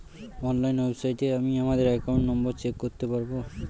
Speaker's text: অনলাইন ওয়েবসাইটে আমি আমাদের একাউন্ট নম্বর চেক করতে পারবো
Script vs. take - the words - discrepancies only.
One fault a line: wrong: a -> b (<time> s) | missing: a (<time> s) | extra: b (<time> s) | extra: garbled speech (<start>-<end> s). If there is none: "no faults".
no faults